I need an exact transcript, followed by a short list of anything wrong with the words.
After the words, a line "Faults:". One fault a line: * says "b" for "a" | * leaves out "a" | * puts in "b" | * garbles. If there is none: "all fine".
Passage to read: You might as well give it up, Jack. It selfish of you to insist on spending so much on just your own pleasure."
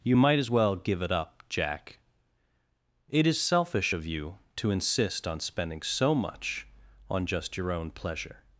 You might as well give it up, Jack. It is selfish of you to insist on spending so much on just your own pleasure."
Faults:
* puts in "is"